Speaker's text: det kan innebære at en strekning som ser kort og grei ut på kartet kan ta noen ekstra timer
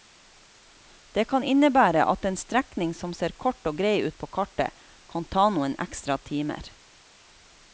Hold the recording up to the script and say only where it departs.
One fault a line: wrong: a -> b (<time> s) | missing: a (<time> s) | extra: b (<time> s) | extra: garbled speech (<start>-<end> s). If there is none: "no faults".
no faults